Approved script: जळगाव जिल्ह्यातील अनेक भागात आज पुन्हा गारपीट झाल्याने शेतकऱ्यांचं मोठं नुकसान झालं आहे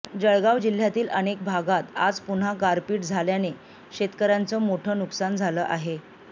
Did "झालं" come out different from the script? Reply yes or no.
no